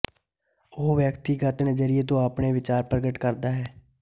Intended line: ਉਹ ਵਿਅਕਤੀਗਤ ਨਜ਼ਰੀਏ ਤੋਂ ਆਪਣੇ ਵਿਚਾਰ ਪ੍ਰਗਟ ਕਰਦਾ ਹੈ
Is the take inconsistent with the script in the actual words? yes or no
no